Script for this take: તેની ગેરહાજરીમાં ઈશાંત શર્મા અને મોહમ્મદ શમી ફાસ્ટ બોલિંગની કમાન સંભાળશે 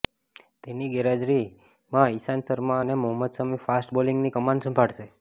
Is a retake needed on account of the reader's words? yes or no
no